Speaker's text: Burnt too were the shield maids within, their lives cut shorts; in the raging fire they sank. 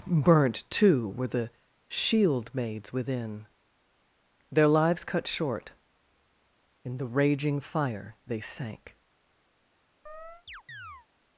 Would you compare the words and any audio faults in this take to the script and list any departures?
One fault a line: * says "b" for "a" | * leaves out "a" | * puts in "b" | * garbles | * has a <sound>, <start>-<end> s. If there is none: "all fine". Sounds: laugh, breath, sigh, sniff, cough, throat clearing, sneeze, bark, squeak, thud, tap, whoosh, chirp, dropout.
* says "short" for "shorts"
* has a chirp, 10.1-11.1 s